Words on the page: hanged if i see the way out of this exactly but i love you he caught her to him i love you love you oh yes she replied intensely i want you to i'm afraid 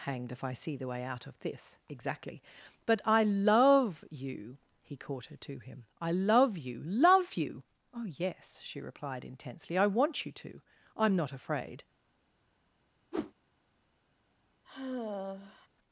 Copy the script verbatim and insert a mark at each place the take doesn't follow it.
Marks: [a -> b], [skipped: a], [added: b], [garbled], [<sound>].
hanged if i see the way out of this exactly but i love you he caught her to him i love you love you oh yes she replied intensely i want you to i'm [added: not] afraid [whoosh] [sigh]